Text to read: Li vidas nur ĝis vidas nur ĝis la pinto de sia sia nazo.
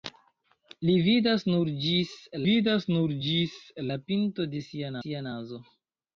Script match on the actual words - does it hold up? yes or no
yes